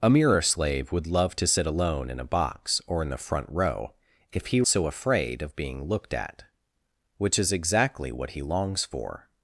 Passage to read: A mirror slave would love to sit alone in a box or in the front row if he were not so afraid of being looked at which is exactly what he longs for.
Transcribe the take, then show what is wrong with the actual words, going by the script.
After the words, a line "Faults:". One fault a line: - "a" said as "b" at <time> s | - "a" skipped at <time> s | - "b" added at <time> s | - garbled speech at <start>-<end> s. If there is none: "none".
A mirror slave would love to sit alone in a box or in the front row if he so afraid of being looked at which is exactly what he longs for.
Faults:
- "were not" skipped at 4.6 s